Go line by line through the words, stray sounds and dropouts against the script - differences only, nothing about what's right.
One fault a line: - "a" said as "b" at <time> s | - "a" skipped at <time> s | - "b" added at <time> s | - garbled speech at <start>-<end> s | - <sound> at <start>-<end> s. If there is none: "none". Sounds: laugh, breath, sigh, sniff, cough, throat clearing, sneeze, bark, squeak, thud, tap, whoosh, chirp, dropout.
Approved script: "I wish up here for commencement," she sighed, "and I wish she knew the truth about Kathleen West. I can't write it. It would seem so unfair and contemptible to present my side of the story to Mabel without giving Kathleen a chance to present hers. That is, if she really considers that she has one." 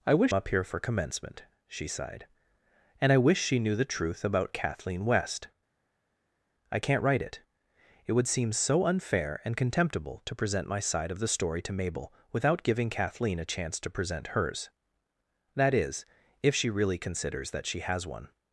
none